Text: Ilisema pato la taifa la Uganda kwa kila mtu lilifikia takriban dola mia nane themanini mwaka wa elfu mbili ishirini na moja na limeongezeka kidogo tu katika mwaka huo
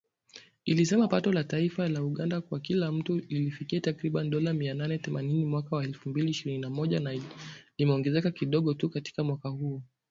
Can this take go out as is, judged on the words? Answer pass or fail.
pass